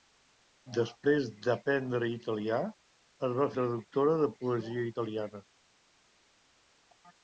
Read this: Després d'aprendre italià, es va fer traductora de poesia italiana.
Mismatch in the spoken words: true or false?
true